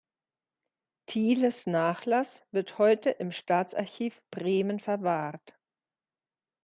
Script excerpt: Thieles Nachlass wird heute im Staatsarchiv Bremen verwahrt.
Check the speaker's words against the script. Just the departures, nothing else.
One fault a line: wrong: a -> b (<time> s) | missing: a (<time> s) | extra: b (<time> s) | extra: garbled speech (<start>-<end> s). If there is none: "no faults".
no faults